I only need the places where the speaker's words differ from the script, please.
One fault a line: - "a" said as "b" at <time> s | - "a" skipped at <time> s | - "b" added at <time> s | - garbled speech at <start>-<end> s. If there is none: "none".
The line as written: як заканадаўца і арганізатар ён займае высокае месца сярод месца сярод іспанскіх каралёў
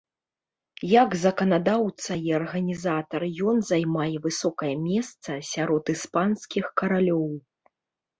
- "месца сярод" skipped at 5.9 s